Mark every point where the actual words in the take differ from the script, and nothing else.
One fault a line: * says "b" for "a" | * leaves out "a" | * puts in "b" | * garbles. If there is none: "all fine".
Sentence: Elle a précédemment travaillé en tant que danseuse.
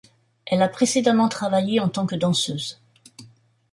all fine